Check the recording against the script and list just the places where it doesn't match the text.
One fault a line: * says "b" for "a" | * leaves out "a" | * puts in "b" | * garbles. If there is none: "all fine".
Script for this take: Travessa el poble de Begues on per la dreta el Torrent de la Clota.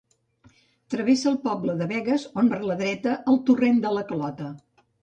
all fine